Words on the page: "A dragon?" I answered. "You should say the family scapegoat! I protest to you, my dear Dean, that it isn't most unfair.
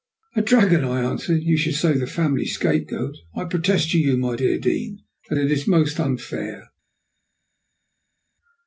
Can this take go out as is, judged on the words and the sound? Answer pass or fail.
fail